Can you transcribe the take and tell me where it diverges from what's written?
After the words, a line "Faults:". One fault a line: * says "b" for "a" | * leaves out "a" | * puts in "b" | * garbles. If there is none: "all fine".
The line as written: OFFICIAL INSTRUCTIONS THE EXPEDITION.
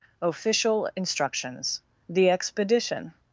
OFFICIAL INSTRUCTIONS THE EXPEDITION.
Faults:
all fine